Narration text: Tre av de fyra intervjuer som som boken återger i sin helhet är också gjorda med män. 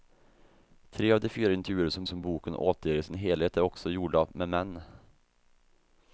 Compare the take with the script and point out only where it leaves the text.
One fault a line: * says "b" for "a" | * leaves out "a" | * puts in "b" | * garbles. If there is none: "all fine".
all fine